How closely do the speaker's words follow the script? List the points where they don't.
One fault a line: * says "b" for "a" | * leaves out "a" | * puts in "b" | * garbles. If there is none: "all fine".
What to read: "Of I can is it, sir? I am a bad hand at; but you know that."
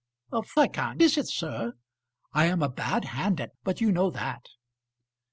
all fine